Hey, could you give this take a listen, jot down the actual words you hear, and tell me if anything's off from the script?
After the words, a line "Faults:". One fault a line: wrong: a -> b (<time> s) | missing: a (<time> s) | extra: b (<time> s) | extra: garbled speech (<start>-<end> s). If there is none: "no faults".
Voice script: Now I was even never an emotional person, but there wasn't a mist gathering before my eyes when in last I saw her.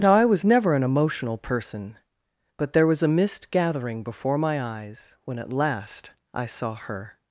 Now I was never an emotional person, but there was a mist gathering before my eyes when at last I saw her.
Faults:
missing: even (0.4 s)
wrong: wasn't -> was (2.9 s)
wrong: in -> at (5.4 s)